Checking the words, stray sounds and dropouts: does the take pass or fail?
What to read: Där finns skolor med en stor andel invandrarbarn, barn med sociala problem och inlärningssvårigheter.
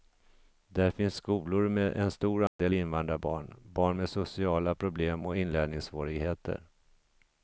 fail